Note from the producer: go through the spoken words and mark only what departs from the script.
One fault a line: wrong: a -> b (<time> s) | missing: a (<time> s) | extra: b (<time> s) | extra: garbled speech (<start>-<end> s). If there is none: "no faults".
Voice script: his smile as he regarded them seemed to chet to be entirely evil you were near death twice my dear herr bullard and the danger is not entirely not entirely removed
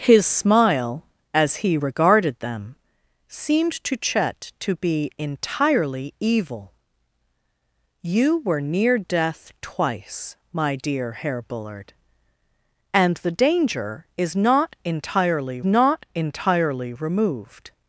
no faults